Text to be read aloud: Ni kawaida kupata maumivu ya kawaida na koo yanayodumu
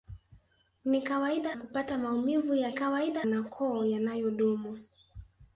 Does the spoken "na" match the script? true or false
true